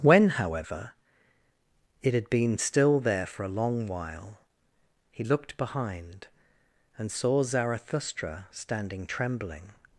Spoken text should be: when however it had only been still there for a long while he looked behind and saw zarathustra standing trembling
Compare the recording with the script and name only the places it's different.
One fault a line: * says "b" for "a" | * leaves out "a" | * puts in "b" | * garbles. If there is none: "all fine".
* leaves out "only"